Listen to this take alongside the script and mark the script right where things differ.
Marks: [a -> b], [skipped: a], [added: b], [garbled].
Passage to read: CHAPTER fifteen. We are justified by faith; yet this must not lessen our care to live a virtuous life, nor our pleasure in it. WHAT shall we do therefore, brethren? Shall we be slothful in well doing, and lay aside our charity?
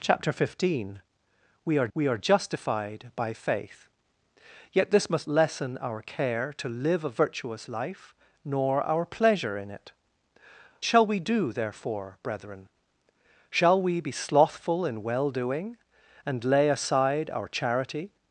CHAPTER fifteen. We are [added: we are] justified by faith; yet this must [skipped: not] lessen our care to live a virtuous life, nor our pleasure in it. [skipped: WHAT] shall we do therefore, brethren? Shall we be slothful in well doing, and lay aside our charity?